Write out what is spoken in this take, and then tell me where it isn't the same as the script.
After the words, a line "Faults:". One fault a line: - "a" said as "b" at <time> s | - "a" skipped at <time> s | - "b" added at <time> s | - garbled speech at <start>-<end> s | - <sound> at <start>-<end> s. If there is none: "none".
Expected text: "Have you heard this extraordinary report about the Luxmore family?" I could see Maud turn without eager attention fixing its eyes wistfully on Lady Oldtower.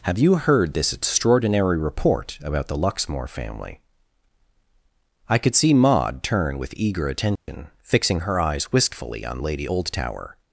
"Have you heard this extraordinary report about the Luxmore family?" I could see Maud turn with eager attention fixing her eyes wistfully on Lady Oldtower.
Faults:
- "without" said as "with" at 6.6 s
- dropout at 7.4-7.5 s
- "its" said as "her" at 8.2 s